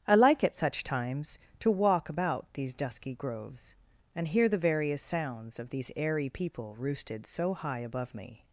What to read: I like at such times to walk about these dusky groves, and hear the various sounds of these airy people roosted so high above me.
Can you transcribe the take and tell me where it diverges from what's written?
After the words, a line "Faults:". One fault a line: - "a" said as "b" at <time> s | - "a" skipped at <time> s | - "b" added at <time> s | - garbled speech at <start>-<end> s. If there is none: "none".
I like at such times to walk about these dusky groves, and hear the various sounds of these airy people roosted so high above me.
Faults:
none